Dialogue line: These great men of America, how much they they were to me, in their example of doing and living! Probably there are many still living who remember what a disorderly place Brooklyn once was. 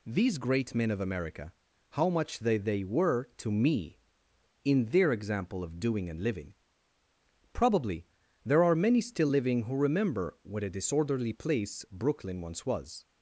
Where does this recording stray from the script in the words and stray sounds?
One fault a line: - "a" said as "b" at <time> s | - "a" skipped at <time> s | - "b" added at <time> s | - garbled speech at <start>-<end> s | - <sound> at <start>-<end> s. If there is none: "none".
none